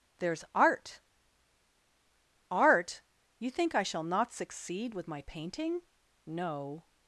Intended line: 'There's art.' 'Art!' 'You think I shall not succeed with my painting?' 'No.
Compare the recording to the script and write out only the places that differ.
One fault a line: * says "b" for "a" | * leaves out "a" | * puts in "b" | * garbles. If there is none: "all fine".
all fine